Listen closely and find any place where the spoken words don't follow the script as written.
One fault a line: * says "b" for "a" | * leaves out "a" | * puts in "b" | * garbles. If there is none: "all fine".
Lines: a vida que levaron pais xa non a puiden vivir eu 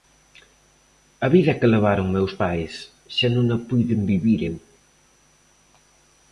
* puts in "meus"